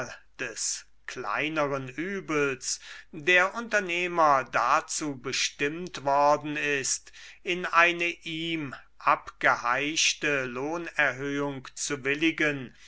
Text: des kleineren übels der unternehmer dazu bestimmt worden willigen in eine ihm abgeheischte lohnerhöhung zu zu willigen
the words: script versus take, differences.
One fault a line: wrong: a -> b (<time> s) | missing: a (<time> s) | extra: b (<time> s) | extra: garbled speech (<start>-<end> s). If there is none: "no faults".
wrong: willigen -> ist (6.6 s)
missing: zu (12.0 s)